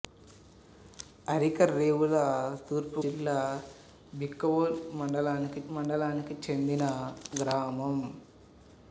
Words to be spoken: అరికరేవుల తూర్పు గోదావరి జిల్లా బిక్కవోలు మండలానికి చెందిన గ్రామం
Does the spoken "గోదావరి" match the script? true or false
false